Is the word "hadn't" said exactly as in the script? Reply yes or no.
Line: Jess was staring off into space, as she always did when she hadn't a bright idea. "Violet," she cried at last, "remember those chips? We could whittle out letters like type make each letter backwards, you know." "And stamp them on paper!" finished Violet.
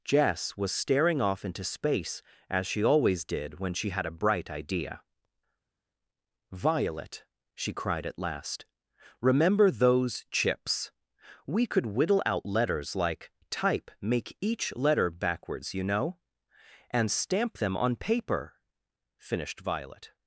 no